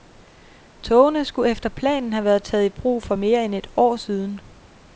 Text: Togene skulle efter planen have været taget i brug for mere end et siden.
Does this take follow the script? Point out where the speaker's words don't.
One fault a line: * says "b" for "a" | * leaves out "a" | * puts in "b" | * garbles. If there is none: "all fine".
* puts in "år"